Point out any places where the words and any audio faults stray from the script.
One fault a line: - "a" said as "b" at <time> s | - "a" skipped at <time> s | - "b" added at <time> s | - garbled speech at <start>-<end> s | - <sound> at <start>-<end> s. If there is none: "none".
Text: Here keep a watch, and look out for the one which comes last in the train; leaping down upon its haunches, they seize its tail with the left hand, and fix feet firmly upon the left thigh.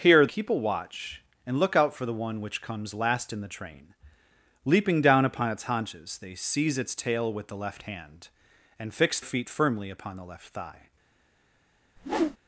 - whoosh at 12.0-12.4 s